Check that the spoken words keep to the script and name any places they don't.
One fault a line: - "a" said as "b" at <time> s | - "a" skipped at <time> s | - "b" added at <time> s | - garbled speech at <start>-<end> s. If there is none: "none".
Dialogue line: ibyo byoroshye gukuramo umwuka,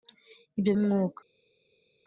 - "byoroshye gukuramo" skipped at 0.7 s